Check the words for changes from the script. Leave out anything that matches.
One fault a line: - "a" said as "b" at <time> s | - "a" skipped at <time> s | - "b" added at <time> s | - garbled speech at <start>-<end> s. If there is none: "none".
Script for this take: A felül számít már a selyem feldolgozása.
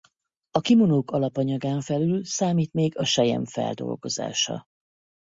- "kimonók alapanyagán" added at 0.6 s
- "már" said as "még" at 2.7 s